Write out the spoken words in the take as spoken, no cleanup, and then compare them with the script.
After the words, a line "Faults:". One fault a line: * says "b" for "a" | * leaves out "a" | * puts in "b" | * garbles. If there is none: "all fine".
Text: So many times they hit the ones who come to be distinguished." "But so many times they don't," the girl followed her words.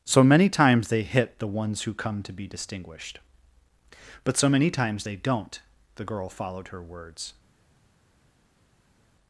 So many times they hit the ones who come to be distinguished." "But so many times they don't," the girl followed her words.
Faults:
all fine